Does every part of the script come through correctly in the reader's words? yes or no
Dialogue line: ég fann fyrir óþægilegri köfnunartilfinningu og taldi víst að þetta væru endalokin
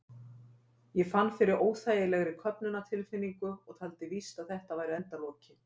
yes